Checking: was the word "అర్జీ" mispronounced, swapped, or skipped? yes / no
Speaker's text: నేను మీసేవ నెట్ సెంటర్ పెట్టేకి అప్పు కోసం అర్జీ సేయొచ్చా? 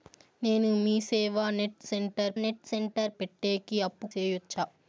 yes